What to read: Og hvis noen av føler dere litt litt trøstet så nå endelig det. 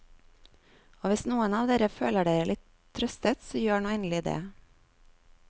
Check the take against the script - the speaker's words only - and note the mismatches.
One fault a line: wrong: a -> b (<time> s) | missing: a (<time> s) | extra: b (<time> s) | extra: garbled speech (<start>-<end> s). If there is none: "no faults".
extra: dere (1.7 s)
missing: litt (2.6 s)
extra: gjør (3.6 s)